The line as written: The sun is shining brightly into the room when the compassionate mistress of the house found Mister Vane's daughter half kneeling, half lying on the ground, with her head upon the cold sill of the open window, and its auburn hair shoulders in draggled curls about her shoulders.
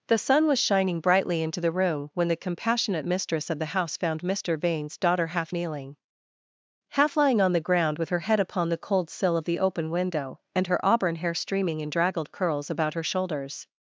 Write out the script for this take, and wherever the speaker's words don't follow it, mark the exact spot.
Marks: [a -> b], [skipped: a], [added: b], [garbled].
The sun [is -> was] shining brightly into the room when the compassionate mistress of the house found Mister Vane's daughter half kneeling, half lying on the ground, with her head upon the cold sill of the open window, and [its -> her] auburn hair [shoulders -> streaming] in draggled curls about her shoulders.